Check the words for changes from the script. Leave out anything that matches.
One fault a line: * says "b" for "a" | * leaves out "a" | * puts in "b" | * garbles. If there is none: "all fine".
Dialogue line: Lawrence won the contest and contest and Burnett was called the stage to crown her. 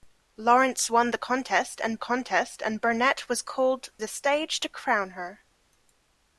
all fine